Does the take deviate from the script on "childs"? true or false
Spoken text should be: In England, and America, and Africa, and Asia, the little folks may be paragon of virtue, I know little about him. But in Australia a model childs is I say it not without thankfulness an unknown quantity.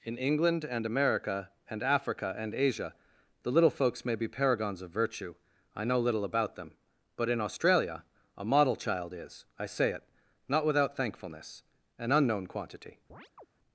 true